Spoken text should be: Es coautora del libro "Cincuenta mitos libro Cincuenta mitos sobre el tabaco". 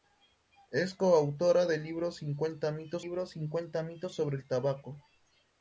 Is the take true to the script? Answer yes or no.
yes